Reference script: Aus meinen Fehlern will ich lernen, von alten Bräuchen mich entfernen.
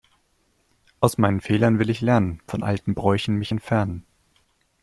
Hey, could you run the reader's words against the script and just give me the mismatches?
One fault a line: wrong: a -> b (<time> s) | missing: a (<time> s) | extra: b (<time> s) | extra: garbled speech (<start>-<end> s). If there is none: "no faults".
no faults